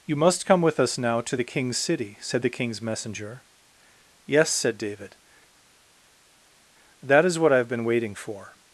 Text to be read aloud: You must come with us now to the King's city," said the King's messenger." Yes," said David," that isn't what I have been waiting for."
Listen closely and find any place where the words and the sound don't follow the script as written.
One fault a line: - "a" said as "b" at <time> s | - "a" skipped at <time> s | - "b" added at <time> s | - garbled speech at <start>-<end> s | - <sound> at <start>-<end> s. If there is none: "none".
- "isn't" said as "is" at 7.2 s